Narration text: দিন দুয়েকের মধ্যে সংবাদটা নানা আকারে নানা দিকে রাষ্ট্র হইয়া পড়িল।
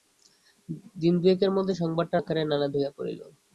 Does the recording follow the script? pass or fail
fail